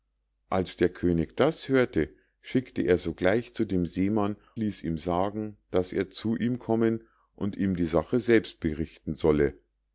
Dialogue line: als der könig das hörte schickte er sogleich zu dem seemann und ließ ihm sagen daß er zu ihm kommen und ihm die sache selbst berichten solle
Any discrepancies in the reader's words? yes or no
yes